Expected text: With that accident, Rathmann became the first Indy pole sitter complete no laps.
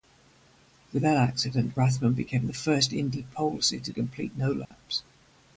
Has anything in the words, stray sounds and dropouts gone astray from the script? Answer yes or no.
yes